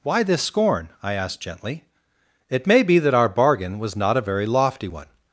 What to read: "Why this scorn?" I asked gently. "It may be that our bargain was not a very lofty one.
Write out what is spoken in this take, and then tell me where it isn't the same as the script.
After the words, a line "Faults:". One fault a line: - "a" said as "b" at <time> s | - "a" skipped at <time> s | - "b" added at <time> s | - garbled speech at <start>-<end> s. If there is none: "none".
"Why this scorn?" I asked gently. "It may be that our bargain was not a very lofty one.
Faults:
none